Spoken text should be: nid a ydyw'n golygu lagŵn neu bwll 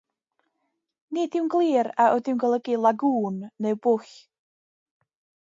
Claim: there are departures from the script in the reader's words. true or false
true